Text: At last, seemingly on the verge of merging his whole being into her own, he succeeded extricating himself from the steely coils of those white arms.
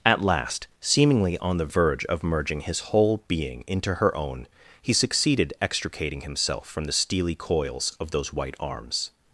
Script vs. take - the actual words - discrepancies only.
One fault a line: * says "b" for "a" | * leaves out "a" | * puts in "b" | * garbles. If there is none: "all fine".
all fine